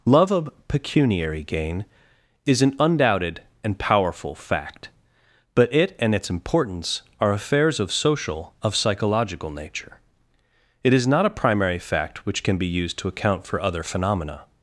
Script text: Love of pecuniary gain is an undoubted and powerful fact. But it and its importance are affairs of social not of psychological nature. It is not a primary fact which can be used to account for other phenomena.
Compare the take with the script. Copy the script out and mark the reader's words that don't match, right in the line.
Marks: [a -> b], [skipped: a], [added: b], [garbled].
Love of pecuniary gain is an undoubted and powerful fact. But it and its importance are affairs of social [skipped: not] of psychological nature. It is not a primary fact which can be used to account for other phenomena.